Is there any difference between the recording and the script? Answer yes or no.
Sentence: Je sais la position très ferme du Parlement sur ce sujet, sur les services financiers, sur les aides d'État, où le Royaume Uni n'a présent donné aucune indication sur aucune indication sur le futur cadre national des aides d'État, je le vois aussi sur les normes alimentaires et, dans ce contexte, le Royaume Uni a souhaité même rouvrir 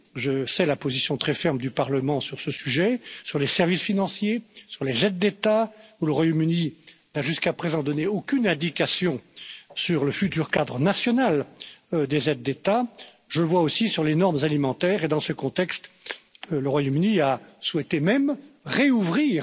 yes